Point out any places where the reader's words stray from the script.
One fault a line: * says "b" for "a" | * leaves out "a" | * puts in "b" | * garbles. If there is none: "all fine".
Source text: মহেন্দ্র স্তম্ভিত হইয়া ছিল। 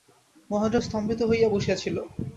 * puts in "বসিয়া"